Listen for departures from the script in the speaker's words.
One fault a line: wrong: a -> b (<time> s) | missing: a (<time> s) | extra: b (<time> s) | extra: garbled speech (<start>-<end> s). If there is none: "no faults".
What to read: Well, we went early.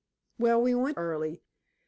no faults